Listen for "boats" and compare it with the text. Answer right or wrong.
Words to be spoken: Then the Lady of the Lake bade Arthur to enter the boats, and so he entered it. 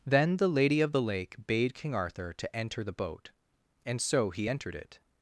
wrong